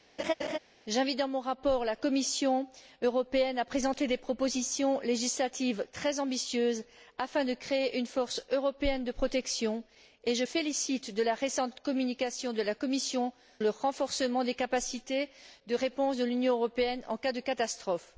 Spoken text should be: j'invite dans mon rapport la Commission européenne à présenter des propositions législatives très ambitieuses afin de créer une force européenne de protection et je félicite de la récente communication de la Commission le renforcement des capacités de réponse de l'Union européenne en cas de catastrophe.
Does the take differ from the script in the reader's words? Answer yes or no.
no